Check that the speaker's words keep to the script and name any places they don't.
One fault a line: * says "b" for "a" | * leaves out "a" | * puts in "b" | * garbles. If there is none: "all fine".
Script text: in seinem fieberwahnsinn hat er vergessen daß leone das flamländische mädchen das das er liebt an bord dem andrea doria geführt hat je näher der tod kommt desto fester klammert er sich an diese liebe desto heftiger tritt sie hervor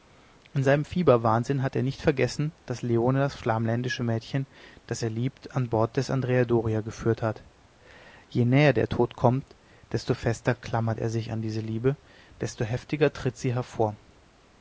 * puts in "nicht"
* leaves out "das"
* says "des" for "dem"